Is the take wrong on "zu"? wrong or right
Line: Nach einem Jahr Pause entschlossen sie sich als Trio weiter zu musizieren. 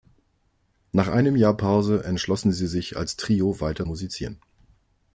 wrong